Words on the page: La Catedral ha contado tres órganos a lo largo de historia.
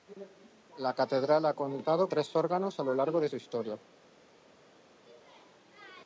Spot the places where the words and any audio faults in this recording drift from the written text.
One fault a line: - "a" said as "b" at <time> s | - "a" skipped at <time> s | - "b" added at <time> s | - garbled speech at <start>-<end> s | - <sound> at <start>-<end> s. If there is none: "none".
none